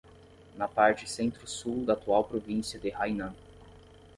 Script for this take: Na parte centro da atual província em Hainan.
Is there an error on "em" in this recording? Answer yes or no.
yes